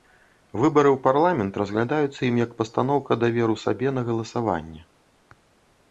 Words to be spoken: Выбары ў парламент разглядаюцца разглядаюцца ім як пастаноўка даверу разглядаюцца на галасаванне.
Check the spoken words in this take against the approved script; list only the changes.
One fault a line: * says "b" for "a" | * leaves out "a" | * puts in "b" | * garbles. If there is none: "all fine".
* leaves out "разглядаюцца"
* says "сабе" for "разглядаюцца"